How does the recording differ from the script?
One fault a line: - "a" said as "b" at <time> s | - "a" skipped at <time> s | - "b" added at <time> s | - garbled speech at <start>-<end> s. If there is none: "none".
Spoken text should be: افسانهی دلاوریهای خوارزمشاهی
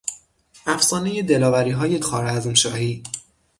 none